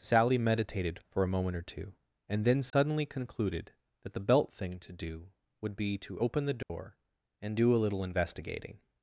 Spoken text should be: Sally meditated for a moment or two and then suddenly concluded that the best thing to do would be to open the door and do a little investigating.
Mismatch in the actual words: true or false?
true